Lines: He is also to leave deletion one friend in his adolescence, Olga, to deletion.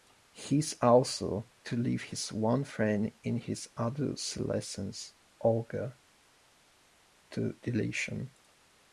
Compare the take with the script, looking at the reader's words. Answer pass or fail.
fail